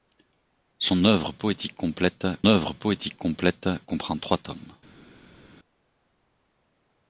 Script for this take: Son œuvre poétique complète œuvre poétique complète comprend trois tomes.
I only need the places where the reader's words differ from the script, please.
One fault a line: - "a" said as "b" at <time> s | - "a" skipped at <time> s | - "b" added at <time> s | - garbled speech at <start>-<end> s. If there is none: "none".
none